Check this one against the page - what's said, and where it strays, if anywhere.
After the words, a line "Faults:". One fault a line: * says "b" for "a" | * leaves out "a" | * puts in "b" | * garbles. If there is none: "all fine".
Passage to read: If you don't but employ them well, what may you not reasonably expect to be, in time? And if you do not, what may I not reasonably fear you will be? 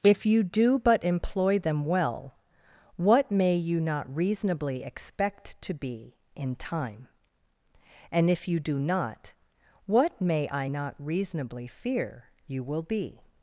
If you do but employ them well, what may you not reasonably expect to be, in time? And if you do not, what may I not reasonably fear you will be?
Faults:
* says "do" for "don't"